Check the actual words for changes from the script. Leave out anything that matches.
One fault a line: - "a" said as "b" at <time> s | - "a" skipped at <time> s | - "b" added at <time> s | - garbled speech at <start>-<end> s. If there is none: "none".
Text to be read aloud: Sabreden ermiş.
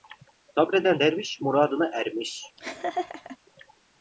- "derviş muradına" added at 1.0 s